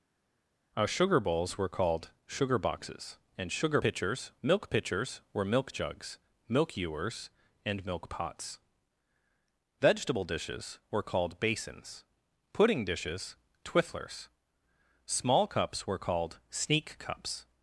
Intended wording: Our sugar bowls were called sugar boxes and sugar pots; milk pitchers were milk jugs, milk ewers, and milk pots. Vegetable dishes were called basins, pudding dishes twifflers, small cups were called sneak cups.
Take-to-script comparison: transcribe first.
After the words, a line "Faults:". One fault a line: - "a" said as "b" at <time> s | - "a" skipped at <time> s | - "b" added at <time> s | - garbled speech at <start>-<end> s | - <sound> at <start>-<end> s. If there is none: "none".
Our sugar bowls were called sugar boxes and sugar pitchers; milk pitchers were milk jugs, milk ewers, and milk pots. Vegetable dishes were called basins, pudding dishes twifflers, small cups were called sneak cups.
Faults:
- "pots" said as "pitchers" at 3.8 s